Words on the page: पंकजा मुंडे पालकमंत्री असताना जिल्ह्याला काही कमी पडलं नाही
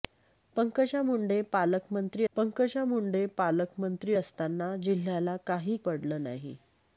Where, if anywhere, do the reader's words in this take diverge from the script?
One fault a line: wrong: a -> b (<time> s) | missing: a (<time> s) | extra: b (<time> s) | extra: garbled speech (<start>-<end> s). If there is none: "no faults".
extra: पंकजा मुंडे पालकमंत्री (2.3 s)
missing: कमी (5.8 s)